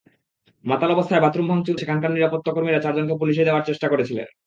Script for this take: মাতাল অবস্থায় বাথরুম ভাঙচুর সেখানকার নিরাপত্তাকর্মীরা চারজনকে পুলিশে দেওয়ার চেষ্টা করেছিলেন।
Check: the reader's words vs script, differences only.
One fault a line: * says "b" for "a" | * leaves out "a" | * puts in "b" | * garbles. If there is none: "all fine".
all fine